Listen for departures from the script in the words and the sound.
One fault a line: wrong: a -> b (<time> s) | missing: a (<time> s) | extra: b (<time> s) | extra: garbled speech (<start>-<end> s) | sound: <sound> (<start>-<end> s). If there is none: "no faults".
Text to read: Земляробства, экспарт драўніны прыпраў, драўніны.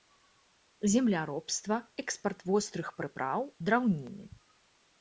wrong: драўніны -> вострых (2.5 s)